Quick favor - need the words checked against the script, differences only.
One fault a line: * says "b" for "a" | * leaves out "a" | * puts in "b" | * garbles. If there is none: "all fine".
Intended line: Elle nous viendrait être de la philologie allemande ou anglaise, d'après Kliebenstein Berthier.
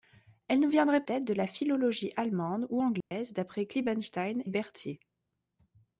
all fine